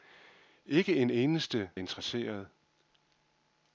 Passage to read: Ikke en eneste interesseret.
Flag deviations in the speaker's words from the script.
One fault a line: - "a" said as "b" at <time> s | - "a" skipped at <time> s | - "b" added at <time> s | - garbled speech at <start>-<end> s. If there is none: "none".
none